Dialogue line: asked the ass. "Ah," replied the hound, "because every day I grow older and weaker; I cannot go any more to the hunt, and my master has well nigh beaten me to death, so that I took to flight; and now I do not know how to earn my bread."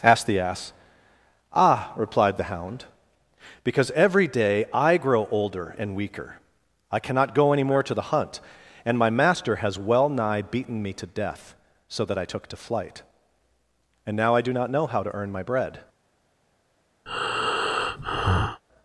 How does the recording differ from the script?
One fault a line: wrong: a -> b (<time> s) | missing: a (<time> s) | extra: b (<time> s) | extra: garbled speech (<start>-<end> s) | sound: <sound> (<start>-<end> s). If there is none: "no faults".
sound: breath (17.1-18.6 s)